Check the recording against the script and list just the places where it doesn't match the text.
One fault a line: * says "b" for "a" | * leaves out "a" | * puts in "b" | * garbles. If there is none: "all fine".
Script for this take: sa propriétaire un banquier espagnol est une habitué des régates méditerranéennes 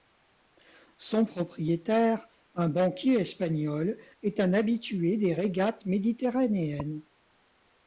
* says "son" for "sa"
* says "un" for "une"